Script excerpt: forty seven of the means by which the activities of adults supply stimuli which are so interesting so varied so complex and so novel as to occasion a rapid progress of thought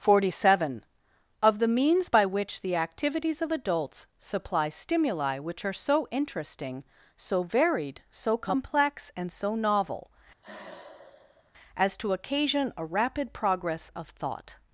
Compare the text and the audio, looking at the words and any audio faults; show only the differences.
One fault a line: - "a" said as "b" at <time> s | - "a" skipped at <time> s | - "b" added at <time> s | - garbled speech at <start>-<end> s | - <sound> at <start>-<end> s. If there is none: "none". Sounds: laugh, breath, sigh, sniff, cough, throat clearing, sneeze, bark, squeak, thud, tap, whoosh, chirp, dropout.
- sigh at 10.4-11.5 s